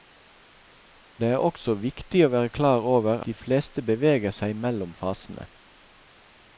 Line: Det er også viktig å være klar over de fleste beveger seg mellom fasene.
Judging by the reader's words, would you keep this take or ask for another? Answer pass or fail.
pass